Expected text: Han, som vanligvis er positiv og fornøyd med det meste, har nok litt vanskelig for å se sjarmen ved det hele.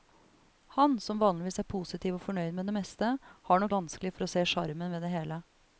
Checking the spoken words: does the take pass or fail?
fail